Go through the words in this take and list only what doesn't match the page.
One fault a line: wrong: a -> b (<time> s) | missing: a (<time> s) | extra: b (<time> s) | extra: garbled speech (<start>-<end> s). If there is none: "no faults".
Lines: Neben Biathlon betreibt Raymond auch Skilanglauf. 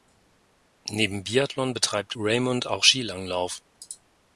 no faults